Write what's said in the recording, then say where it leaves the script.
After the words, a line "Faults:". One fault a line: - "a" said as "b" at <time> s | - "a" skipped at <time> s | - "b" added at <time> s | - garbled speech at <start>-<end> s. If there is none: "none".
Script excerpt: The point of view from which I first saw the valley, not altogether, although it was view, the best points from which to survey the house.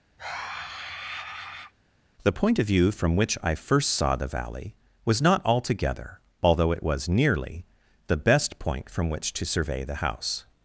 The point of view from which I first saw the valley, was not altogether, although it was nearly, the best point from which to survey the house.
Faults:
- "was" added at 5.1 s
- "view" said as "nearly" at 7.1 s
- "points" said as "point" at 8.6 s